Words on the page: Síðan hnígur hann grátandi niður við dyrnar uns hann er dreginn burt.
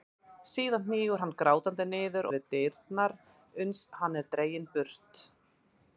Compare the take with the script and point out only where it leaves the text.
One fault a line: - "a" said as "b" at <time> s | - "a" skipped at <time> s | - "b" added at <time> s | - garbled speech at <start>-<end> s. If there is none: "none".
none